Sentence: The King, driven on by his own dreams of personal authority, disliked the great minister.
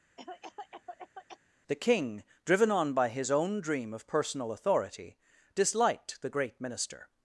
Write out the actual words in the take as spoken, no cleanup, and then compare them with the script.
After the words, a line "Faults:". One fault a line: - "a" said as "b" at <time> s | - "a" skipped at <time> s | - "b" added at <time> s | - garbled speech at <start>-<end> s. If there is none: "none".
The King, driven on by his own dream of personal authority, disliked the great minister.
Faults:
- "dreams" said as "dream" at 3.6 s